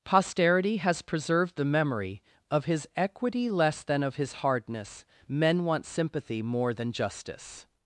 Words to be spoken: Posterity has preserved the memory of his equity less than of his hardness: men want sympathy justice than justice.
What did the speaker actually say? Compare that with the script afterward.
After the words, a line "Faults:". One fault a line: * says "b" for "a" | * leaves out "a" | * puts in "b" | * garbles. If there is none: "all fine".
Posterity has preserved the memory of his equity less than of his hardness: men want sympathy more than justice.
Faults:
* says "more" for "justice"